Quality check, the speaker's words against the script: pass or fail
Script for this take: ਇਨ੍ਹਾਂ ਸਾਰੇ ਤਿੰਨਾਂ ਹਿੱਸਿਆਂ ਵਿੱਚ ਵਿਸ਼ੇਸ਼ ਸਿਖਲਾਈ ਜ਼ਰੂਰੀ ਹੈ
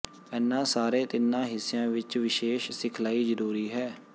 pass